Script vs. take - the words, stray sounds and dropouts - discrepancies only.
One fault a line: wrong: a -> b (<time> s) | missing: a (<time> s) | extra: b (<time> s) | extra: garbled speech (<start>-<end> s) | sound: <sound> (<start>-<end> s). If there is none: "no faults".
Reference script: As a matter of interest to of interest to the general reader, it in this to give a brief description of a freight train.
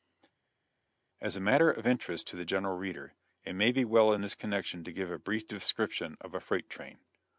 missing: of interest to (2.4 s)
extra: may be well (3.5 s)
extra: connection (4.3 s)